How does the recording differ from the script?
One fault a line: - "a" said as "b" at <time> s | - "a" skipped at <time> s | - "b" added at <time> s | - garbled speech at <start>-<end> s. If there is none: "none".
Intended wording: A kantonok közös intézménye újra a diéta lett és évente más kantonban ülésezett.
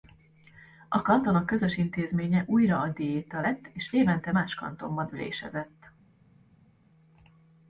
none